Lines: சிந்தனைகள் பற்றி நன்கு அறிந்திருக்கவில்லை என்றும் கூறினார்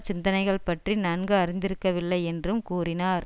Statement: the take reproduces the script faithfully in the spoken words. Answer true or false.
true